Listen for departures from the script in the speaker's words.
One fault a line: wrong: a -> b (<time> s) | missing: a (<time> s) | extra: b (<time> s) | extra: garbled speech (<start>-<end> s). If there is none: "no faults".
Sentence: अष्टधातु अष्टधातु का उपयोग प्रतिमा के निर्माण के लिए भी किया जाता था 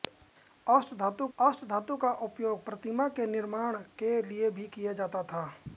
no faults